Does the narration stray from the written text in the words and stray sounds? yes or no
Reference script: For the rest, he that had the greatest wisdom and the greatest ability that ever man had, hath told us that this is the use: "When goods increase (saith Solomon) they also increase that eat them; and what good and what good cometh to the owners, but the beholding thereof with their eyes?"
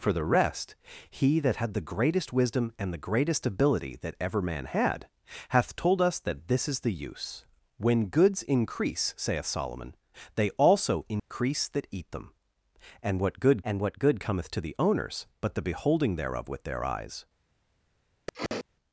yes